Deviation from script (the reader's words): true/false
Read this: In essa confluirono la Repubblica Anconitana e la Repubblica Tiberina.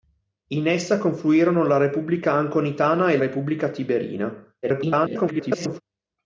true